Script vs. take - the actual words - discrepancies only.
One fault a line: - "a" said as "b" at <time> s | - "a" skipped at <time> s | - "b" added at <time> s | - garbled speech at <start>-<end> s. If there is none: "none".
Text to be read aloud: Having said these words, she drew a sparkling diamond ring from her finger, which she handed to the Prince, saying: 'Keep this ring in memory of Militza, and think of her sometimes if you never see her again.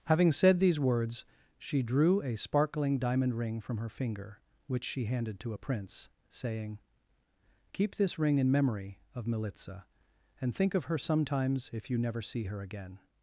- "the" said as "a" at 5.5 s